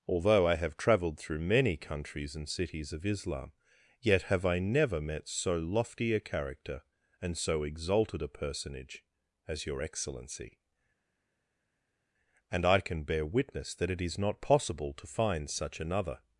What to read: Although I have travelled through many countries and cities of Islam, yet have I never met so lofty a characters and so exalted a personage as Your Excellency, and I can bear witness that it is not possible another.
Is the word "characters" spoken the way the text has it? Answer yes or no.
no